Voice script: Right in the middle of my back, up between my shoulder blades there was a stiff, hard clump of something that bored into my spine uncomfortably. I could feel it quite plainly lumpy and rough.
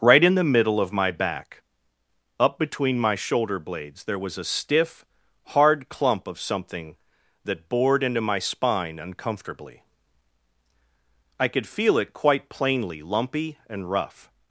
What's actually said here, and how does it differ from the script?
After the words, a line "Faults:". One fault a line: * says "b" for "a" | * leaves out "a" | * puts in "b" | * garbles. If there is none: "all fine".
Right in the middle of my back, up between my shoulder blades there was a stiff, hard clump of something that bored into my spine uncomfortably. I could feel it quite plainly lumpy and rough.
Faults:
all fine